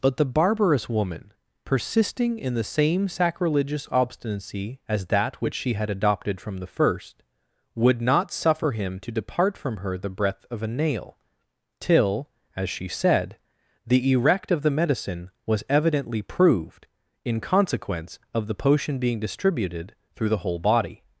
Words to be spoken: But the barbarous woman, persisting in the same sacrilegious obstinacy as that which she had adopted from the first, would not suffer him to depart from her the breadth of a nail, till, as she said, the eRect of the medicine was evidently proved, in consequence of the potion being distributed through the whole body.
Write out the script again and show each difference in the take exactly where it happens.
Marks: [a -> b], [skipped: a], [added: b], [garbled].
But the barbarous woman, persisting in the same sacrilegious obstinacy as that which she had adopted from the first, would not suffer him to depart from her the breadth of a nail, till, as she said, the eRect of the medicine was evidently proved, in consequence of the potion being distributed through the whole body.